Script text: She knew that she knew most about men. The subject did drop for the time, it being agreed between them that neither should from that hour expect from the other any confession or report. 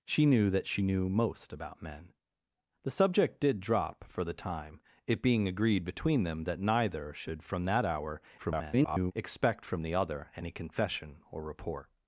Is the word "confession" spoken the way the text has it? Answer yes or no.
yes